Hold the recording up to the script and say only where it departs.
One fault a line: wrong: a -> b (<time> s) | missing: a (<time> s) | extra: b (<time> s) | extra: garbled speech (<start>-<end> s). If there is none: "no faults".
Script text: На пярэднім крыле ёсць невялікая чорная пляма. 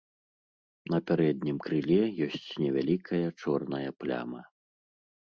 no faults